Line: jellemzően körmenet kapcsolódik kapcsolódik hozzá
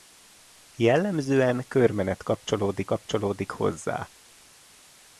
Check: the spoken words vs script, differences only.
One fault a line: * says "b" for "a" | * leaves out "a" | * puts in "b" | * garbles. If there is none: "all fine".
all fine